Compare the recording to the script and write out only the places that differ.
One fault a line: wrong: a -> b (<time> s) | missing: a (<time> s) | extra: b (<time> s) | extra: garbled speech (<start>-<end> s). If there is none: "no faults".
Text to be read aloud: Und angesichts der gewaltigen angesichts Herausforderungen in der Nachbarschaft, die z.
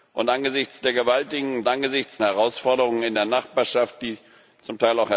no faults